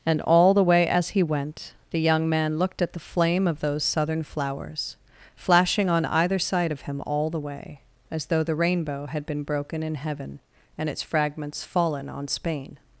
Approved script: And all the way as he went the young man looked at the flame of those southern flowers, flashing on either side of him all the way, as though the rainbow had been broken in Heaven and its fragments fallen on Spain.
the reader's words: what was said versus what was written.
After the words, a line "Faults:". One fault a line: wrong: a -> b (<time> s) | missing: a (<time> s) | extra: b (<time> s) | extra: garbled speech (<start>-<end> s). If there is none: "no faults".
And all the way as he went the young man looked at the flame of those southern flowers, flashing on either side of him all the way, as though the rainbow had been broken in Heaven and its fragments fallen on Spain.
Faults:
no faults